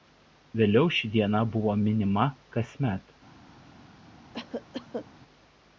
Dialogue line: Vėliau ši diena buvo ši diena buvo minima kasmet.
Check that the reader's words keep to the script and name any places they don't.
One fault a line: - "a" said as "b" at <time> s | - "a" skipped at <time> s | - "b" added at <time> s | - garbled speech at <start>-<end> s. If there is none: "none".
- "ši diena buvo" skipped at 1.8 s